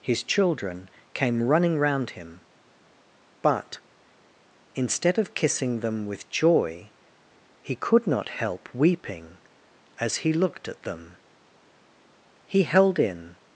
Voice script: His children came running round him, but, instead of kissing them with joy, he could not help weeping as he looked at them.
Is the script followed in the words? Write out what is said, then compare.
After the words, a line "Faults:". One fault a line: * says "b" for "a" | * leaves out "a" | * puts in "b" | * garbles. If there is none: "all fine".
His children came running round him, but, instead of kissing them with joy, he could not help weeping as he looked at them. He held in
Faults:
* puts in "He held in"